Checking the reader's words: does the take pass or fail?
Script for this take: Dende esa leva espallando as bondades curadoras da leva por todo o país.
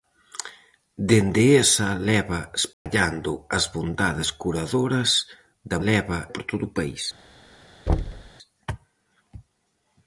pass